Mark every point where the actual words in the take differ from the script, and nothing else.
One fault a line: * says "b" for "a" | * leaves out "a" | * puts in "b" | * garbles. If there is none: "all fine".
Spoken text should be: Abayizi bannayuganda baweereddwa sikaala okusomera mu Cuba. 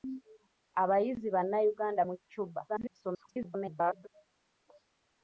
* leaves out "baweereddwa sikaala okusomera"
* garbles